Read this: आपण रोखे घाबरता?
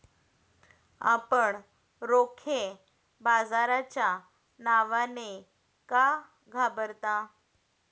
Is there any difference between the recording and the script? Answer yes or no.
yes